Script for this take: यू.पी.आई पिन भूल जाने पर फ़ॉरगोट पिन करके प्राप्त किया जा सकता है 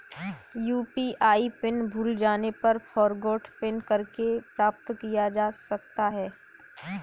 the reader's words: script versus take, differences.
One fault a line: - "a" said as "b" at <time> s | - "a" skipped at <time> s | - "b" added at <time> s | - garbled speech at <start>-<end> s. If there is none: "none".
none